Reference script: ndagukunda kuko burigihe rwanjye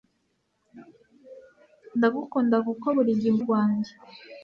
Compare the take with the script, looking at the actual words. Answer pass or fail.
pass